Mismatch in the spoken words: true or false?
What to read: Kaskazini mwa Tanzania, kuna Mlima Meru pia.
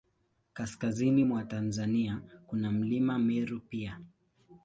false